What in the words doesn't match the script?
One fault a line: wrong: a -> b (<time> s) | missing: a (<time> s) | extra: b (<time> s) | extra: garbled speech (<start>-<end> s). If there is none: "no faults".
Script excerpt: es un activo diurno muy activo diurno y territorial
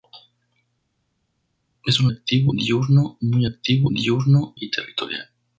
no faults